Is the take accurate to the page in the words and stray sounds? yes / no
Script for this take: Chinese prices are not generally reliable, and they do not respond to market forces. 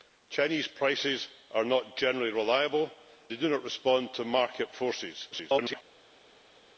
no